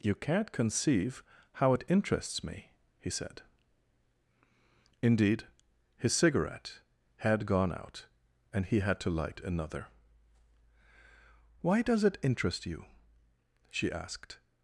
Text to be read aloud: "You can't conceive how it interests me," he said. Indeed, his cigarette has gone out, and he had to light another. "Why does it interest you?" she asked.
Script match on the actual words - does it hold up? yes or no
no